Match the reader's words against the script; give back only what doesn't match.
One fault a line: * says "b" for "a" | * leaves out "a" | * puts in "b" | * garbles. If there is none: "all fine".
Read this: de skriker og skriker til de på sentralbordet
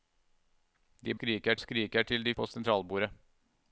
all fine